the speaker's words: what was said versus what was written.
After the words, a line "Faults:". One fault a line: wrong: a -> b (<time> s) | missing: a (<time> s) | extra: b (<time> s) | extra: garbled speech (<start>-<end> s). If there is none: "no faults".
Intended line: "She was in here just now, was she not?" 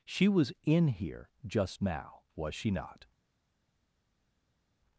"She was in here just now, was she not?"
Faults:
no faults